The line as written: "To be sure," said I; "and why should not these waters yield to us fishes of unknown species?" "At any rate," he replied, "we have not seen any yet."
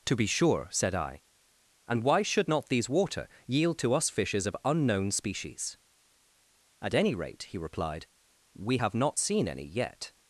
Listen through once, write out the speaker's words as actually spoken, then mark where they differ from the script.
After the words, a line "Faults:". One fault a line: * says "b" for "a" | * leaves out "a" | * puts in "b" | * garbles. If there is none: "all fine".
"To be sure," said I; "and why should not these water yield to us fishes of unknown species?" "At any rate," he replied, "we have not seen any yet."
Faults:
* says "water" for "waters"